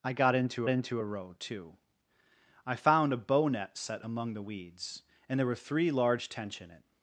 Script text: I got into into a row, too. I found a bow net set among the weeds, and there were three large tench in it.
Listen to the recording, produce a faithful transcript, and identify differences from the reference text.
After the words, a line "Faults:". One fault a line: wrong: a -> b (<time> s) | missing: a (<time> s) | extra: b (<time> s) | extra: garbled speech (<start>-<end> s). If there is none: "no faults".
I got into into a row, too. I found a bow net set among the weeds, and there were three large tench in it.
Faults:
no faults